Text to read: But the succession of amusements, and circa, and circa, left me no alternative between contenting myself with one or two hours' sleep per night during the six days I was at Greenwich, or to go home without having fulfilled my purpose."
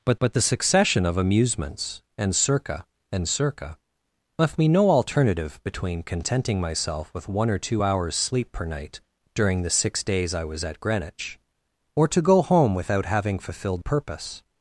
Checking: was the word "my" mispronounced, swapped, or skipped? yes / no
yes